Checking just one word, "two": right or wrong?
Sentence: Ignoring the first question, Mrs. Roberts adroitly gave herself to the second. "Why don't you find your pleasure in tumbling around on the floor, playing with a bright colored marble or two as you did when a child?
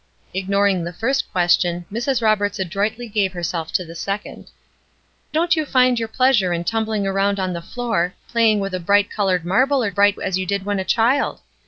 wrong